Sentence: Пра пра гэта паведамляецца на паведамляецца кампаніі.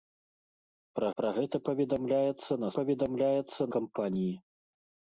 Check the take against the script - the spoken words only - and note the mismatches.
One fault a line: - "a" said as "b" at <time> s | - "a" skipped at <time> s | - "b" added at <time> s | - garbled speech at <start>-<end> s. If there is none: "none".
none